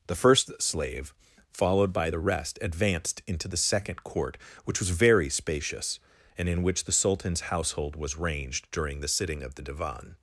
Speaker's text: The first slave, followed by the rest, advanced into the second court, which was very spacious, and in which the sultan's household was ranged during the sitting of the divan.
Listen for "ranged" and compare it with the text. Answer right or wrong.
right